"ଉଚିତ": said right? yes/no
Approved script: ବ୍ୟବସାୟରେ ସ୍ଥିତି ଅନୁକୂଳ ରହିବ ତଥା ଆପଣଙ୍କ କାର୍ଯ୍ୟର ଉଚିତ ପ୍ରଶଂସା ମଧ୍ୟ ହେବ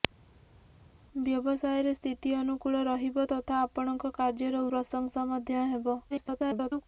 no